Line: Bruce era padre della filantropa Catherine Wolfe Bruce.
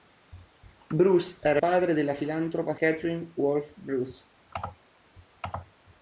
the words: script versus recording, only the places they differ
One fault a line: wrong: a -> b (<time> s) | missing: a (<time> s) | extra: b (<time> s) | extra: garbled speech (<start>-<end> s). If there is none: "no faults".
no faults